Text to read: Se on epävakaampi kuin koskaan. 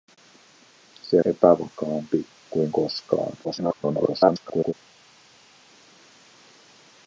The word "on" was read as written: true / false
false